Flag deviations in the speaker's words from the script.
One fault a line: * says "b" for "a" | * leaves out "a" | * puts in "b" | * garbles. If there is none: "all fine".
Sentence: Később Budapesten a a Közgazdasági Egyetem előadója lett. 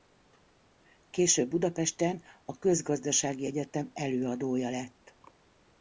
* leaves out "a"